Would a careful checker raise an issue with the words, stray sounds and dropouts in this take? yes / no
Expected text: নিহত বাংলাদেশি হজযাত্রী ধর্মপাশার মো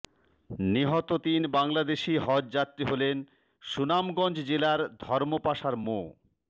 yes